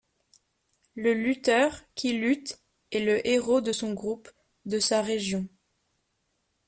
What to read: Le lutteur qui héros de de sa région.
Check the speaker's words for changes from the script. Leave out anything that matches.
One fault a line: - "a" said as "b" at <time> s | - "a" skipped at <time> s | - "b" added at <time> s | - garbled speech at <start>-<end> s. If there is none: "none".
- "lutte est le" added at 2.1 s
- "son groupe" added at 3.7 s